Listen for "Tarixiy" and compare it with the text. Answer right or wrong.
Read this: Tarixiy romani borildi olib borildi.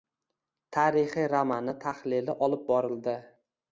right